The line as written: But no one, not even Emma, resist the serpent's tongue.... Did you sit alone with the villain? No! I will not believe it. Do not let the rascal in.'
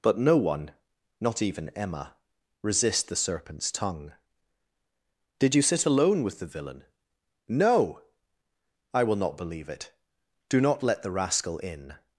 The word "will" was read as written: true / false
true